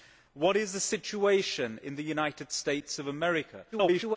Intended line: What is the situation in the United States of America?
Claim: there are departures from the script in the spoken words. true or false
true